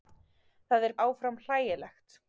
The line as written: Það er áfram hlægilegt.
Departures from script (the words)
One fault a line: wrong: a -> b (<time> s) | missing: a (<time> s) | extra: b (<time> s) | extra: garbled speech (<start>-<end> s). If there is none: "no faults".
no faults